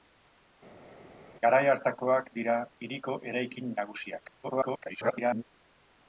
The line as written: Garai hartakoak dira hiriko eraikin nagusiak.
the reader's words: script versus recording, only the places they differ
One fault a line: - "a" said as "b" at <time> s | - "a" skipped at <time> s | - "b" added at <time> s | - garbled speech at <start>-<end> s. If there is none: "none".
- garbled speech at 4.4-5.4 s